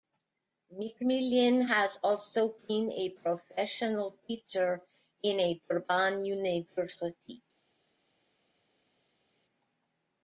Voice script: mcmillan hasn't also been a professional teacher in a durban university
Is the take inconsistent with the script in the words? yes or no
yes